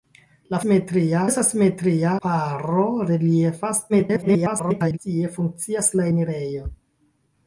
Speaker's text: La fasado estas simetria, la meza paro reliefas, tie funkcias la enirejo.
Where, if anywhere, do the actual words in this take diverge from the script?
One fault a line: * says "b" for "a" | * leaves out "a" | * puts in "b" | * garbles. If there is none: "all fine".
* says "simetria" for "fasado"
* leaves out "la meza"
* garbles